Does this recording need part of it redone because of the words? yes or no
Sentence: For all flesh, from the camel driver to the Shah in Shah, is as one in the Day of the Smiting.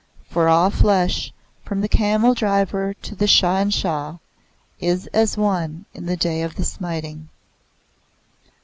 no